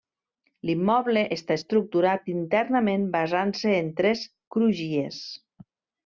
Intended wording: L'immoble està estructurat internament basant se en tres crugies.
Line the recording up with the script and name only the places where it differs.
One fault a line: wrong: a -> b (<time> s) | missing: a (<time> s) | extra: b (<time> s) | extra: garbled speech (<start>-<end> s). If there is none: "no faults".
no faults